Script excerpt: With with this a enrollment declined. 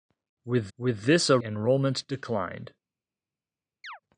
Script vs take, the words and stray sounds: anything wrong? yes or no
yes